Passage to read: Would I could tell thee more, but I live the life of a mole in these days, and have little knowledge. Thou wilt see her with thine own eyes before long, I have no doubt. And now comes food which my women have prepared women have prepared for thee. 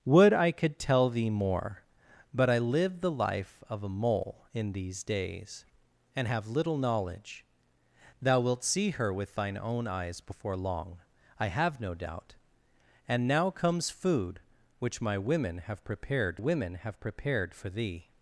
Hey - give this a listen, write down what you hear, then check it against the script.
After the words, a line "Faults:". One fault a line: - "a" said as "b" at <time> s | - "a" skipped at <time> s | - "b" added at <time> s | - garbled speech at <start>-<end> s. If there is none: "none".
Would I could tell thee more, but I live the life of a mole in these days, and have little knowledge. Thou wilt see her with thine own eyes before long, I have no doubt. And now comes food which my women have prepared women have prepared for thee.
Faults:
none